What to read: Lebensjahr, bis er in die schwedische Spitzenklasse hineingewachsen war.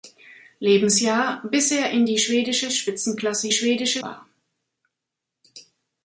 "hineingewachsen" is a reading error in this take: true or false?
true